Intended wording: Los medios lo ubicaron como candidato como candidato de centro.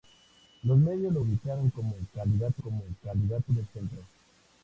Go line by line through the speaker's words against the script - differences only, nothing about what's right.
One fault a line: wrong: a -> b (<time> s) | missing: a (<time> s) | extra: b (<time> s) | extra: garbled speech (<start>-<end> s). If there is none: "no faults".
no faults